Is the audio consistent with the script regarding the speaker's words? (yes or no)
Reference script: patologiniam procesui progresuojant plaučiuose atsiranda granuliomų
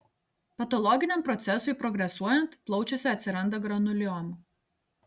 yes